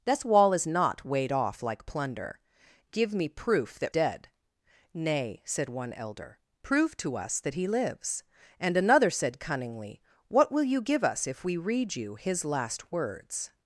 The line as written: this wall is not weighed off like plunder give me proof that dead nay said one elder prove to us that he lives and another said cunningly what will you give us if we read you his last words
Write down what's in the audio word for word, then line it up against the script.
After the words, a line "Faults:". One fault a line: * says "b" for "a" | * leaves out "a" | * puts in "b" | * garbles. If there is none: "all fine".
this wall is not weighed off like plunder give me proof that dead nay said one elder prove to us that he lives and another said cunningly what will you give us if we read you his last words
Faults:
all fine